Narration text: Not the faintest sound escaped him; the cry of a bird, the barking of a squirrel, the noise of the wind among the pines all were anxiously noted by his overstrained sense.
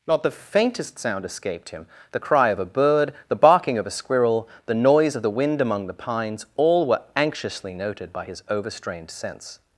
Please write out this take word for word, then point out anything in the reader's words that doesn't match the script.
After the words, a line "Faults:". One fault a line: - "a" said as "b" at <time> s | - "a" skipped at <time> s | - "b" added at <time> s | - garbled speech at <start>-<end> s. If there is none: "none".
Not the faintest sound escaped him; the cry of a bird, the barking of a squirrel, the noise of the wind among the pines all were anxiously noted by his overstrained sense.
Faults:
none